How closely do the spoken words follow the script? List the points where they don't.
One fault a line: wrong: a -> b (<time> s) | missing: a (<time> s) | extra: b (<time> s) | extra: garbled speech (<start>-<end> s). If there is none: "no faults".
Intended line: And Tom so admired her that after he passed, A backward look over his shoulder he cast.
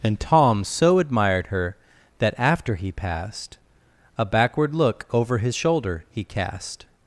no faults